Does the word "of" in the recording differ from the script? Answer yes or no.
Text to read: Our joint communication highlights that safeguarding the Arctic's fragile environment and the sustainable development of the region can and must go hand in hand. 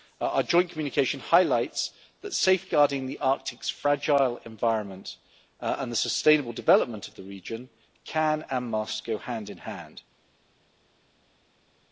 no